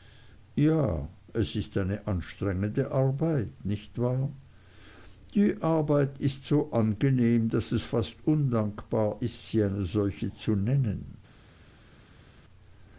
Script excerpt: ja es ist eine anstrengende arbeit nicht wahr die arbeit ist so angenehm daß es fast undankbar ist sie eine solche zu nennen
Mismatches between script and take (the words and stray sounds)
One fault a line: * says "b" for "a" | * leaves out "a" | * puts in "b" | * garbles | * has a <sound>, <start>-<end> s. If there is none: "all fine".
all fine